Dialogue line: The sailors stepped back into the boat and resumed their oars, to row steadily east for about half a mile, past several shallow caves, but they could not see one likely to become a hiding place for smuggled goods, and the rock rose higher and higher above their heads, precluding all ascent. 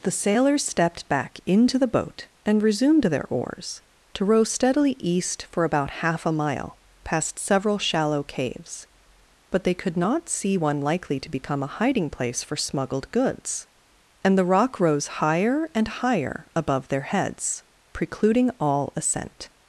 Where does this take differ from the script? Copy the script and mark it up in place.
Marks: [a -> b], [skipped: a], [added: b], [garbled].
The sailors stepped back into the boat and resumed their oars, to row steadily east for about half a mile, past several shallow caves, but they could not see one likely to become a hiding place for smuggled goods, and the rock rose higher and higher above their heads, precluding all ascent.